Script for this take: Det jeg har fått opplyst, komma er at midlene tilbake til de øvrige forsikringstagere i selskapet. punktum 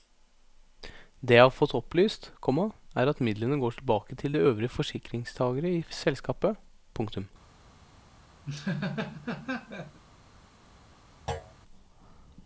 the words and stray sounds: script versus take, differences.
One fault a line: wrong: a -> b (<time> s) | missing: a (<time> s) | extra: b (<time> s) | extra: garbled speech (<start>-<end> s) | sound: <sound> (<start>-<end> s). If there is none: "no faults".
extra: går (3.6 s)
sound: laugh (8.5-10.0 s)
sound: thud (11.3-11.5 s)